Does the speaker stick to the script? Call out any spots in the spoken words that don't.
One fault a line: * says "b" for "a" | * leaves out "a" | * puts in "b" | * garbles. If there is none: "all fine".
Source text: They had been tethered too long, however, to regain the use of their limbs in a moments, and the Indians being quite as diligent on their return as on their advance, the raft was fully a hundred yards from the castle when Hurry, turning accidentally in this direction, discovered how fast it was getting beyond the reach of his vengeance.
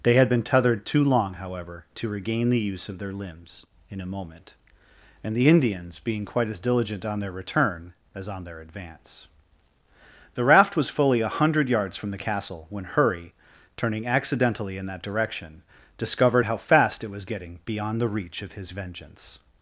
* says "moment" for "moments"
* says "that" for "this"